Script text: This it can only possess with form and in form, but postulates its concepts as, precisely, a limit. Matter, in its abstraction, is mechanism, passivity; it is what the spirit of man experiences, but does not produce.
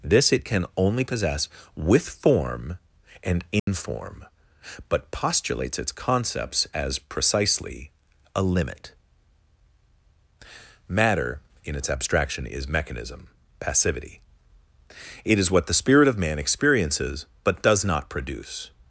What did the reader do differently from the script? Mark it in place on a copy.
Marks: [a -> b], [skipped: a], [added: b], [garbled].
This it can only possess with form and in form, but postulates its concepts as, precisely, a limit. Matter, in its abstraction, is mechanism, passivity; it is what the spirit of man experiences, but does not produce.